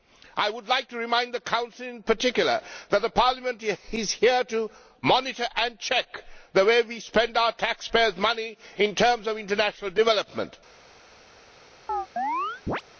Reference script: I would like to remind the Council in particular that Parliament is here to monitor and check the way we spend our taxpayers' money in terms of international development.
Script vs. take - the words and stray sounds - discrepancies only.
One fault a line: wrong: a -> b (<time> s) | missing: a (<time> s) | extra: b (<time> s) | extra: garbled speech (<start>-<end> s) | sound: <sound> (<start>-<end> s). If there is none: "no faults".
sound: chirp (11.9-12.8 s)